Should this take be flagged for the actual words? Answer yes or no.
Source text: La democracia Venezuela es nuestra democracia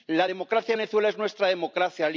no